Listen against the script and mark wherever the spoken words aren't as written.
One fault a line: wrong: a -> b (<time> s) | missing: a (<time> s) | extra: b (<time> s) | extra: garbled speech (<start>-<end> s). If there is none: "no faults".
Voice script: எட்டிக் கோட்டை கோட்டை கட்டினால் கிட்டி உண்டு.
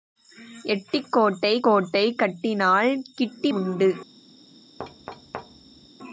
no faults